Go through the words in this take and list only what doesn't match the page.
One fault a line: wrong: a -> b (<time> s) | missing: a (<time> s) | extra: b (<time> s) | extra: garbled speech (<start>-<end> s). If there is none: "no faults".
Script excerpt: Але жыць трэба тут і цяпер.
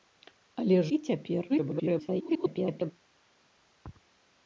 missing: жыць трэба тут (0.8 s)
extra: garbled speech (1.5-2.9 s)